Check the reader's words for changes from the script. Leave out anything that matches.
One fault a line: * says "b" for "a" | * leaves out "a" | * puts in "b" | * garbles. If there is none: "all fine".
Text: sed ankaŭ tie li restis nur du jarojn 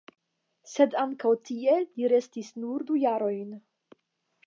all fine